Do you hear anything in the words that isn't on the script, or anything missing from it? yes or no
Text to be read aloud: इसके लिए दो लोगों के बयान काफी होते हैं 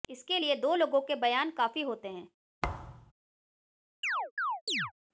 no